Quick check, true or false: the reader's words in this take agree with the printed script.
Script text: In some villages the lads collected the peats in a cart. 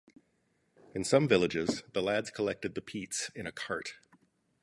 true